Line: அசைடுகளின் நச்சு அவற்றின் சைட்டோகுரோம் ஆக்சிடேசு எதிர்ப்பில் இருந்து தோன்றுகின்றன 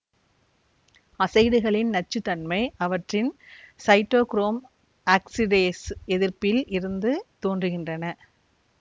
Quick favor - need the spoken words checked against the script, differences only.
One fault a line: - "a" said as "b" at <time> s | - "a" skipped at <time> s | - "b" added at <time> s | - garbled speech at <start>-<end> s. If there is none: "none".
- "தன்மை" added at 2.2 s